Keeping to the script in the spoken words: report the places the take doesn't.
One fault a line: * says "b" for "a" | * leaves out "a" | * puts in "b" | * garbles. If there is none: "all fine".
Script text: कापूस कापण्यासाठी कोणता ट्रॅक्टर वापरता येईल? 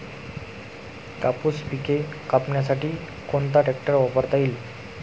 * puts in "पिके"